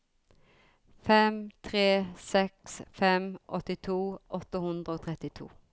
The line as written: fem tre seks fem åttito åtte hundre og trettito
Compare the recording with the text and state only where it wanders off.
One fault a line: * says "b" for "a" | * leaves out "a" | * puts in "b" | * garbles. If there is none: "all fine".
all fine